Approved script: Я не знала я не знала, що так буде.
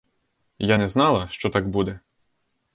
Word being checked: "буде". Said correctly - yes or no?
yes